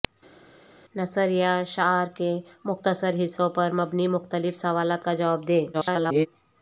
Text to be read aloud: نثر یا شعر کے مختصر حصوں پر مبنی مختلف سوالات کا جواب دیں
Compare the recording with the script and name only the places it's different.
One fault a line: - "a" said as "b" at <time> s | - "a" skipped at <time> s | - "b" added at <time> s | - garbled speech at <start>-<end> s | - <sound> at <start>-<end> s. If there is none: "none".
- garbled speech at 5.7-6.3 s